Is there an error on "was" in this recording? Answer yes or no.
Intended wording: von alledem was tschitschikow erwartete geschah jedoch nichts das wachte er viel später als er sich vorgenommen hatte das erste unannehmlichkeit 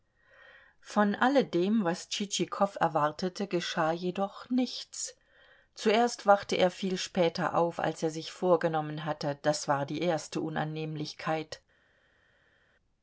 no